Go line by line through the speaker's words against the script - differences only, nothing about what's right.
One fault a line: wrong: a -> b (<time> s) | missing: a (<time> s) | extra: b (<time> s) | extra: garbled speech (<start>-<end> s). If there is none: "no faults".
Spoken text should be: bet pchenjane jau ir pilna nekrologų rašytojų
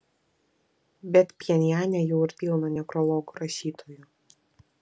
no faults